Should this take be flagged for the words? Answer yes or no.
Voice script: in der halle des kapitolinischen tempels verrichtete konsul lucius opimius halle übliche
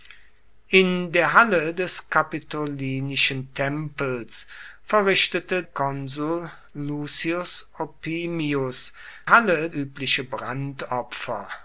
no